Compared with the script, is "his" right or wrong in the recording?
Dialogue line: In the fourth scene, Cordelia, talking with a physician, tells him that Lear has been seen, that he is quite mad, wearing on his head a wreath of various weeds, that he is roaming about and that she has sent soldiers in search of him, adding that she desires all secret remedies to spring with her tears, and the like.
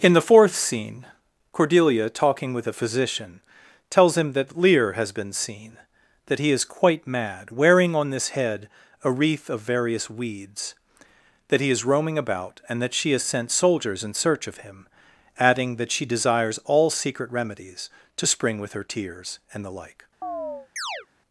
wrong